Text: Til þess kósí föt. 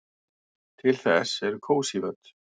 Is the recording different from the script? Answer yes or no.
yes